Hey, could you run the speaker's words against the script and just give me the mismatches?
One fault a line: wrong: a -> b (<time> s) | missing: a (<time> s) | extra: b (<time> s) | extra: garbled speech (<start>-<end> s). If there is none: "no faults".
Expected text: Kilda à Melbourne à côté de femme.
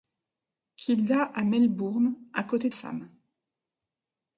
no faults